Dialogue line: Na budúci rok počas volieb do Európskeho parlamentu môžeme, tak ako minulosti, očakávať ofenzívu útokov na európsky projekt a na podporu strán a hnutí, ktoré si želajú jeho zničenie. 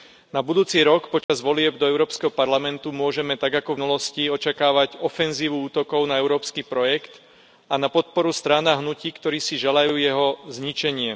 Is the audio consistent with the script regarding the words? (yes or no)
yes